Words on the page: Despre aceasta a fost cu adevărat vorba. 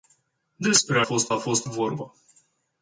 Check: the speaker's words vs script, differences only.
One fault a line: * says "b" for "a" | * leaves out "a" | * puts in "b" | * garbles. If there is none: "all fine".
* says "fost" for "aceasta"
* leaves out "cu adevărat"